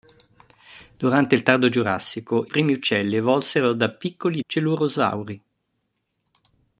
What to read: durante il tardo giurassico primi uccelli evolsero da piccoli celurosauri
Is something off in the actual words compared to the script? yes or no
no